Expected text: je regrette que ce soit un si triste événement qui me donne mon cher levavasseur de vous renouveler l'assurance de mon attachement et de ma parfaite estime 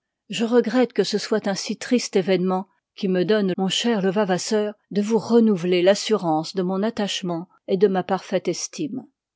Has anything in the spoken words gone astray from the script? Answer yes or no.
no